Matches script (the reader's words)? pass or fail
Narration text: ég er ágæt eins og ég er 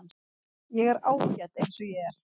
pass